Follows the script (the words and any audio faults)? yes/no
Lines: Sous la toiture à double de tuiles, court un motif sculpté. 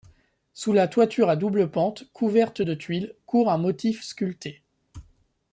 no